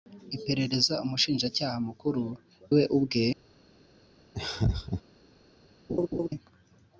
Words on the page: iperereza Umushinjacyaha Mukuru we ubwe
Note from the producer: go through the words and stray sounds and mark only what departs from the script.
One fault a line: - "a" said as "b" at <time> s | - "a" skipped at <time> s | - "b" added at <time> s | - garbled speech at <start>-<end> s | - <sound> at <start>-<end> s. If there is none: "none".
- laugh at 4.3-5.0 s
- laugh at 5.9-6.3 s